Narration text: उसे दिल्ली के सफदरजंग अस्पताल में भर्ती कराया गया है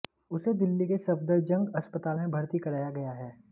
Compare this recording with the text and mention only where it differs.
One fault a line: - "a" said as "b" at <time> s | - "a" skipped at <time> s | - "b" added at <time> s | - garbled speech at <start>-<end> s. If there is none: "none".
none